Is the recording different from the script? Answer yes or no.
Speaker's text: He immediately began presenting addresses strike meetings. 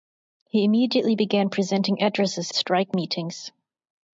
no